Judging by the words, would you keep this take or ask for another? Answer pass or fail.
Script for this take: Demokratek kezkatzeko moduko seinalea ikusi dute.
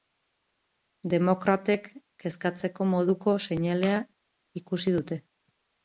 pass